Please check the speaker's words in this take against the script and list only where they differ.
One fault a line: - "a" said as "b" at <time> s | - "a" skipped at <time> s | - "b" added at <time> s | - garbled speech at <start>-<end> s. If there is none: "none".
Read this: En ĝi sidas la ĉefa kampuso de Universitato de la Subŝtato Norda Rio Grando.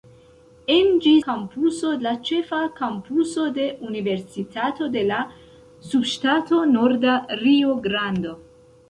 - "sidas" said as "kampuso" at 1.2 s